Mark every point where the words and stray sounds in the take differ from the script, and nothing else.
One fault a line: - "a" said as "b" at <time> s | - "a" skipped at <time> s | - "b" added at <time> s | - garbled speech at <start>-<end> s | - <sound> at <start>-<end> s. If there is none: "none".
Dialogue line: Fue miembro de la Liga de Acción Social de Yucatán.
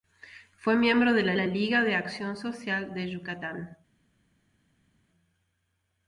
- "la" added at 1.3 s